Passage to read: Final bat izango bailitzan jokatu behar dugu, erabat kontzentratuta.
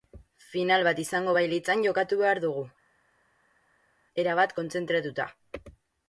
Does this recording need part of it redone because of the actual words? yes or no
no